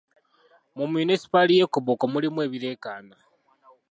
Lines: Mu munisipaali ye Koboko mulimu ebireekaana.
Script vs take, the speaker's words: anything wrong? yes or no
no